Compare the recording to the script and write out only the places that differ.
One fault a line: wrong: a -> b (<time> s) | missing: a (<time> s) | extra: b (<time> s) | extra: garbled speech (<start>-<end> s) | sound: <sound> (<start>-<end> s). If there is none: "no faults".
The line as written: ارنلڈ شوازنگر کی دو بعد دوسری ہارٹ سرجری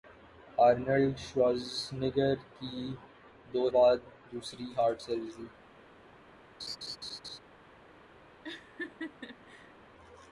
sound: laugh (6.6-7.4 s)
sound: laugh (8.4-9.7 s)